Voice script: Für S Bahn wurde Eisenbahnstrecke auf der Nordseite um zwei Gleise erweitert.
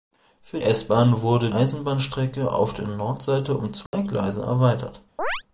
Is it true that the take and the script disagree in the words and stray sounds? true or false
true